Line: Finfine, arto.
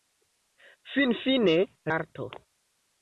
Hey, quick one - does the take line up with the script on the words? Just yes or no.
yes